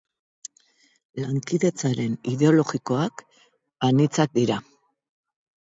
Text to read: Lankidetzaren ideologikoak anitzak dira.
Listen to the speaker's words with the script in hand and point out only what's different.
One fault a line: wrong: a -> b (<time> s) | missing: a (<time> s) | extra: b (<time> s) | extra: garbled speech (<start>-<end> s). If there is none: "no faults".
no faults